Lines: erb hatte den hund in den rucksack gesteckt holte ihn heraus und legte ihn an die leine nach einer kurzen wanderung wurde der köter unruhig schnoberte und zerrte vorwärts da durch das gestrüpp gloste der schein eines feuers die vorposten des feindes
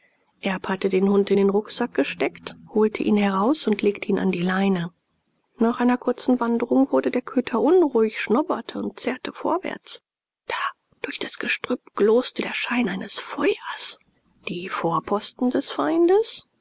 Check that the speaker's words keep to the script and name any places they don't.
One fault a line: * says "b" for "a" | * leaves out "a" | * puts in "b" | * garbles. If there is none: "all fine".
all fine